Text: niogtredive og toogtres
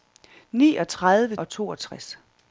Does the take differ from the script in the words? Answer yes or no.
no